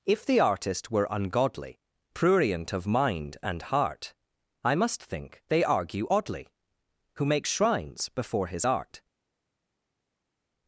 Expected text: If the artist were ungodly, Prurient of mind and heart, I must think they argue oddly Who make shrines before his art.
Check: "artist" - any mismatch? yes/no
no